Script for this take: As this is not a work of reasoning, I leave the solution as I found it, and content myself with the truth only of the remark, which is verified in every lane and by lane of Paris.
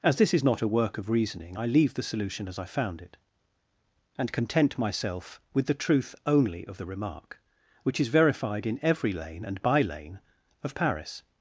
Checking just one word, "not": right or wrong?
right